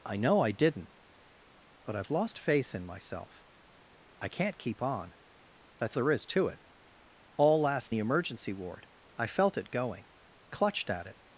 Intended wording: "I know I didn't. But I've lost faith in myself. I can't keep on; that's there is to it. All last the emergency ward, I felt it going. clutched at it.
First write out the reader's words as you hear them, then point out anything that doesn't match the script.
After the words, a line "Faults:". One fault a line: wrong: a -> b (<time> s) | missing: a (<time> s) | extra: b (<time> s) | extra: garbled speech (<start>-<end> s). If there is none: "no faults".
"I know I didn't. But I've lost faith in myself. I can't keep on; that's there is to it. All last the emergency ward, I felt it going. clutched at it.
Faults:
no faults